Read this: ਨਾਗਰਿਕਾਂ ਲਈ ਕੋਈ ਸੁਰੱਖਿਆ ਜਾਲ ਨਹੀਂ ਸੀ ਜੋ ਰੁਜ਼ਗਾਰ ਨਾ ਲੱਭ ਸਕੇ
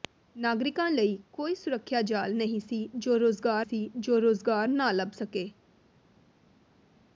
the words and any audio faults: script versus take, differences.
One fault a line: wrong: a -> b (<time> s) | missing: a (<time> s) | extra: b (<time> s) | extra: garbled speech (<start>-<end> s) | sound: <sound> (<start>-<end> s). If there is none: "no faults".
extra: ਸੀ ਜੋ ਰੁਜ਼ਗਾਰ (3.6 s)